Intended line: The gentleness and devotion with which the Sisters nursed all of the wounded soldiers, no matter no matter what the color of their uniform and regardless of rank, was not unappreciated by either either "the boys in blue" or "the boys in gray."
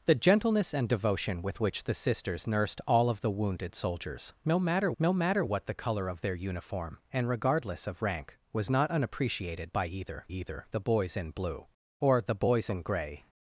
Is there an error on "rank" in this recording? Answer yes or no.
no